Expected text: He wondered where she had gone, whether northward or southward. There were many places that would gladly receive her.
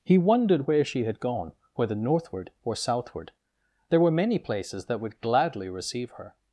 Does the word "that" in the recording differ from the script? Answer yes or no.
no